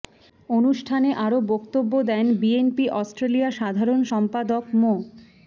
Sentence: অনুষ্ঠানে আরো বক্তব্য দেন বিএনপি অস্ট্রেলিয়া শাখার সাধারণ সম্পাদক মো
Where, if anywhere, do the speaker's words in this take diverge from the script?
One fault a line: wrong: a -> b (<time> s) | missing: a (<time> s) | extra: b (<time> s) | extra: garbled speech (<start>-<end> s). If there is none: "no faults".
missing: শাখার (3.5 s)